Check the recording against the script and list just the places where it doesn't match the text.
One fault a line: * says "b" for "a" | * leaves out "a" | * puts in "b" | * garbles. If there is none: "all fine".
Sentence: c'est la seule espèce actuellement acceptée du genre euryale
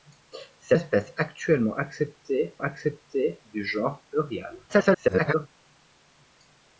* leaves out "la seule"
* puts in "acceptée"
* garbles